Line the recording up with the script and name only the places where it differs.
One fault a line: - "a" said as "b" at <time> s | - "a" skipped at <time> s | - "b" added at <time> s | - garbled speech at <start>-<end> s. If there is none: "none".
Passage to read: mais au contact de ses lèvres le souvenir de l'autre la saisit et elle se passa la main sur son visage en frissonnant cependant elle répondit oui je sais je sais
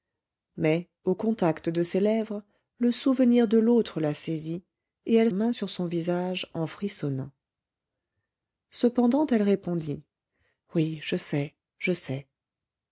- "se passa la" skipped at 5.3 s